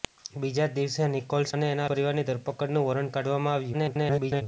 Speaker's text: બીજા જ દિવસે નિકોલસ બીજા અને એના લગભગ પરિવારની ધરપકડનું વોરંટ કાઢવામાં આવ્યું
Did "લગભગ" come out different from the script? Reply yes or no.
yes